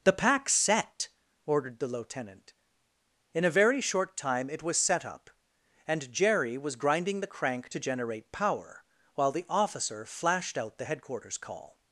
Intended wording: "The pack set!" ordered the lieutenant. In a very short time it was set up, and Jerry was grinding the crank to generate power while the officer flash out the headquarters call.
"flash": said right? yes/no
no